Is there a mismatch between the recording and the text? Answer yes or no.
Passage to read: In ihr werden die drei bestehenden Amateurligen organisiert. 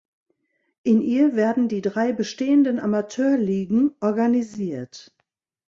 no